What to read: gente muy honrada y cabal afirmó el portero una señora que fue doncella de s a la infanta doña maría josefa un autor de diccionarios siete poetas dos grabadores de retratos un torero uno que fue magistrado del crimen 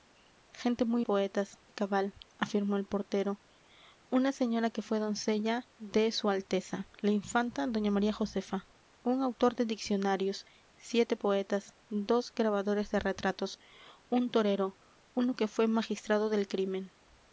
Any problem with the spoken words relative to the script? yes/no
yes